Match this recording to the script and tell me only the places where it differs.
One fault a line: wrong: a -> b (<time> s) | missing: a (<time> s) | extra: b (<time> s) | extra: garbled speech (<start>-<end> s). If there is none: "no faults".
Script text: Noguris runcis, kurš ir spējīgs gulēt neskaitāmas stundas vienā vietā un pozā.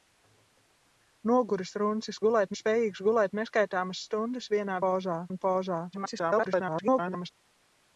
wrong: kurš -> gulēt (2.3 s)
wrong: vietā -> pozā (4.9 s)
extra: garbled speech (5.9-7.3 s)